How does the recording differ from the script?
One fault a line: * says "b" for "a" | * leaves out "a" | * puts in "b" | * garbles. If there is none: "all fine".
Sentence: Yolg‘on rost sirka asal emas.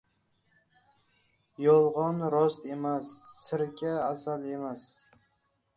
* puts in "emas"